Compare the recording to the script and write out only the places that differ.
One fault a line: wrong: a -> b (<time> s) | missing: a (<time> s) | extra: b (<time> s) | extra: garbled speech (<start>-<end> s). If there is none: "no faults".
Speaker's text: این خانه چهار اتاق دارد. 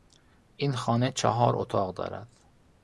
no faults